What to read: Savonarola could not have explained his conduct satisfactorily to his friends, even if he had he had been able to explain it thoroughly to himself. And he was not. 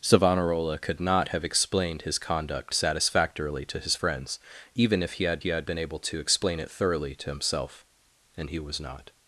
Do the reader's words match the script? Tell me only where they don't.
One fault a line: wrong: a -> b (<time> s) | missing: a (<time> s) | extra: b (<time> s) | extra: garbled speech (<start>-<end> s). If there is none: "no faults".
no faults